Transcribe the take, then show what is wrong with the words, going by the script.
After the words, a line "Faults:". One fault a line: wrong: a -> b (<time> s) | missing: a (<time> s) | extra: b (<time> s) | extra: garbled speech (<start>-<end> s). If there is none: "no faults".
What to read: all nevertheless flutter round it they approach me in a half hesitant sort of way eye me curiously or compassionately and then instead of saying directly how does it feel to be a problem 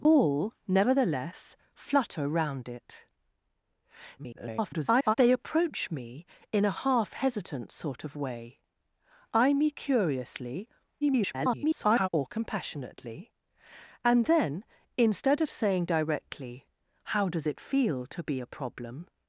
all nevertheless flutter round it [garbled] they approach me in a half hesitant sort of way eye me curiously [garbled] or compassionately and then instead of saying directly how does it feel to be a problem
Faults:
extra: garbled speech (4.2-5.1 s)
extra: garbled speech (11.0-12.1 s)